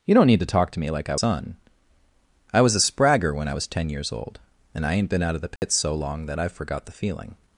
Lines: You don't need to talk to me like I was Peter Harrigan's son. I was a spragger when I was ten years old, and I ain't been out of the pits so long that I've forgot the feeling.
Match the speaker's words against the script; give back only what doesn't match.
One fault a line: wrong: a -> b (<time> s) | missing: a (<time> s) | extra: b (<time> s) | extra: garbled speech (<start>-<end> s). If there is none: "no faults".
missing: was Peter Harrigan's (1.1 s)